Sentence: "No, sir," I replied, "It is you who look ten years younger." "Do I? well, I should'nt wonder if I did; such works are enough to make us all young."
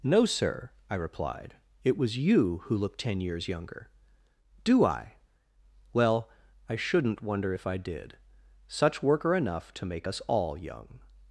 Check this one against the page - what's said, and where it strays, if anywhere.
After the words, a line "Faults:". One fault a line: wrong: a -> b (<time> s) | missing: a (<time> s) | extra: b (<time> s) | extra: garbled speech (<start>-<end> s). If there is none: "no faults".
"No, sir," I replied, "It was you who look ten years younger." "Do I? well, I should'nt wonder if I did; such work are enough to make us all young."
Faults:
wrong: is -> was (1.9 s)
wrong: works -> work (9.0 s)